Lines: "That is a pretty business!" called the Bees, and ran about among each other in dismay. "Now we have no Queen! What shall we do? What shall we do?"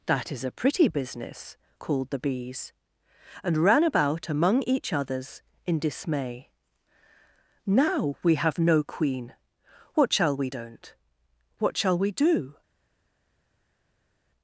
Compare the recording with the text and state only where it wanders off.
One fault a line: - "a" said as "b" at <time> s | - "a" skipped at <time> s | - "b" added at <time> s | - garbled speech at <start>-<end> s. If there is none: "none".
- "other" said as "others" at 4.9 s
- "do" said as "don't" at 10.5 s